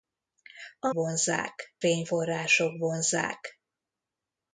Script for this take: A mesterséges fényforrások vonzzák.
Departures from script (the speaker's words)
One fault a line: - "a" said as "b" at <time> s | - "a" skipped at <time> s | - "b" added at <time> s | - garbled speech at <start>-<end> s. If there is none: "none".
- "mesterséges" said as "vonzzák" at 0.9 s